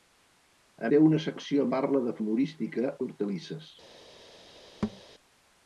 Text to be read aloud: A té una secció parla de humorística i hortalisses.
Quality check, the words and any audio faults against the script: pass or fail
fail